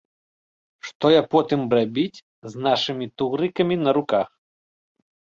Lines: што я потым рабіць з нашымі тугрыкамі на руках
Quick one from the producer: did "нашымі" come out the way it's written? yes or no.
yes